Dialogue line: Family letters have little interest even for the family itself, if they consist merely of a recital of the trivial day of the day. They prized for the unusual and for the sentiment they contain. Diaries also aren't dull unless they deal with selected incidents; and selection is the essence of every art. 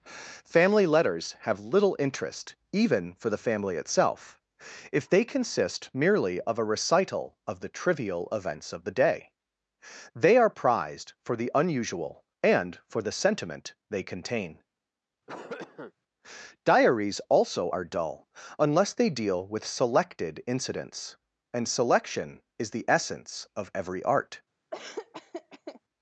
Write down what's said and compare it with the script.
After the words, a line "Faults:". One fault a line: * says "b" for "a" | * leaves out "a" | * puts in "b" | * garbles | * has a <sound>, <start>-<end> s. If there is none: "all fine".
Family letters have little interest even for the family itself, if they consist merely of a recital of the trivial events of the day. They are prized for the unusual and for the sentiment they contain. Diaries also are dull unless they deal with selected incidents; and selection is the essence of every art.
Faults:
* says "events" for "day"
* puts in "are"
* has a cough, 15.3-15.9 s
* says "are" for "aren't"
* has a laugh, 24.7-25.8 s